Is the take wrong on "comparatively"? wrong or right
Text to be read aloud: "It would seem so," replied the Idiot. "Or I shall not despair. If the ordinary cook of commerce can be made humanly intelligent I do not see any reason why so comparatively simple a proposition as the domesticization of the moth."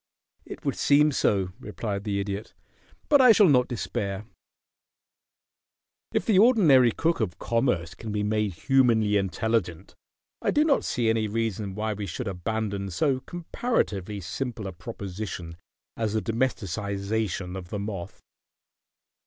right